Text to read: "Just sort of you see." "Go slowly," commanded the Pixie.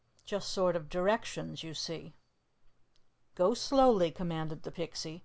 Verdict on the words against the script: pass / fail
fail